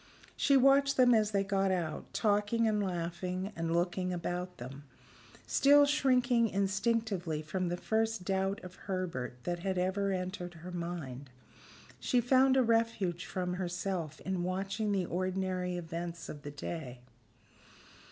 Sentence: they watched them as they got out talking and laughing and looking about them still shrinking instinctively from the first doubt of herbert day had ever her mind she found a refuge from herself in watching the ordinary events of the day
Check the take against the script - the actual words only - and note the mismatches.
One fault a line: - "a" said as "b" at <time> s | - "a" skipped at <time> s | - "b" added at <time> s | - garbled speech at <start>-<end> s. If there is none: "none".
- "they" said as "she" at 0.3 s
- "day" said as "that" at 9.4 s
- "entered" added at 10.1 s